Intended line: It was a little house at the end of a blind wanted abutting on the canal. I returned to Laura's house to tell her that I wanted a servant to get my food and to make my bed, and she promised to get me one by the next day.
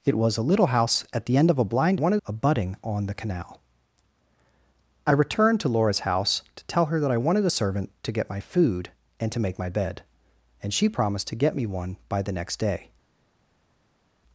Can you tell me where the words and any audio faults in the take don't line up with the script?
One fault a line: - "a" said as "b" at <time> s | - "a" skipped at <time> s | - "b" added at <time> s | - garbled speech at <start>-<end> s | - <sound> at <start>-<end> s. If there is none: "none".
none